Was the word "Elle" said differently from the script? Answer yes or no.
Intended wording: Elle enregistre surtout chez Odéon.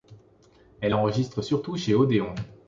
no